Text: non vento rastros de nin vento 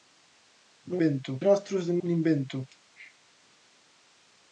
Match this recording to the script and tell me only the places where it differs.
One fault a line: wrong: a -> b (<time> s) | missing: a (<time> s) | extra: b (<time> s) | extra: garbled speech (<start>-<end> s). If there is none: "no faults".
no faults